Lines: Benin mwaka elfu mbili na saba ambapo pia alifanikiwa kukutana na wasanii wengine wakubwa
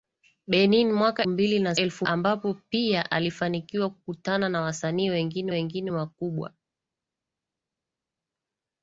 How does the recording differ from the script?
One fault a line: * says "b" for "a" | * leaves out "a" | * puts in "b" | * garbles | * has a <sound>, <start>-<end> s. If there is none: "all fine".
* leaves out "elfu"
* says "elfu" for "saba"
* puts in "wengine"